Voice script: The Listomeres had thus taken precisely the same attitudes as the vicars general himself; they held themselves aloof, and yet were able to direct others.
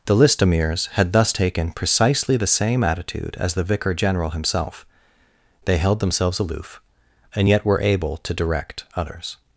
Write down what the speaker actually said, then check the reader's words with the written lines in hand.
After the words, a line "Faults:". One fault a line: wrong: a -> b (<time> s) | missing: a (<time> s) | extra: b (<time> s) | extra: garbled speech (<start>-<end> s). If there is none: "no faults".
The Listomeres had thus taken precisely the same attitude as the vicar general himself; they held themselves aloof, and yet were able to direct others.
Faults:
wrong: attitudes -> attitude (2.8 s)
wrong: vicars -> vicar (3.6 s)